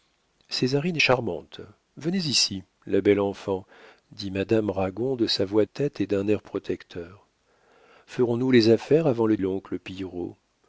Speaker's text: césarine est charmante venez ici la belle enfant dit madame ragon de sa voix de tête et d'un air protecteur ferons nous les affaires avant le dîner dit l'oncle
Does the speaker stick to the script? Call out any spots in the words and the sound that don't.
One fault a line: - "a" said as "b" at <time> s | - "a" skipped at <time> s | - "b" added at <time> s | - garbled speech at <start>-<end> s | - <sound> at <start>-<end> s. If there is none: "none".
- "de" skipped at 5.6 s
- "dîner dit" skipped at 9.4 s